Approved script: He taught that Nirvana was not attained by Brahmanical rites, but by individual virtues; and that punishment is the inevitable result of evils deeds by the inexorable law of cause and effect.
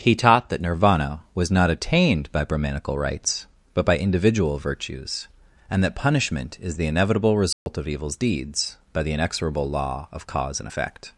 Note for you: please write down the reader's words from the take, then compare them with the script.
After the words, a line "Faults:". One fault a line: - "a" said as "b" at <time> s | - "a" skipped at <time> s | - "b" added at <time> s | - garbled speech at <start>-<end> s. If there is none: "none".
He taught that Nirvana was not attained by Brahmanical rites, but by individual virtues; and that punishment is the inevitable result of evils deeds by the inexorable law of cause and effect.
Faults:
none